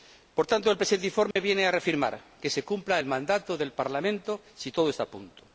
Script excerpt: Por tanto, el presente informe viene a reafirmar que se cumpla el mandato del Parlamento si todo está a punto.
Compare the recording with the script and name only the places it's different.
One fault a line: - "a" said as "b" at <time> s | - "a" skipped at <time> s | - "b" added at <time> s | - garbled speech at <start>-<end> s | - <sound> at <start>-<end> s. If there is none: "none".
- dropout at 1.3-1.4 s